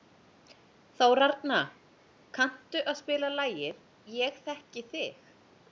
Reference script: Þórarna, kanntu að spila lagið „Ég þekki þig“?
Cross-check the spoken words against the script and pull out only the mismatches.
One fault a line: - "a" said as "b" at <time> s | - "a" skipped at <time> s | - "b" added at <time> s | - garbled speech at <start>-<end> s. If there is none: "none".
none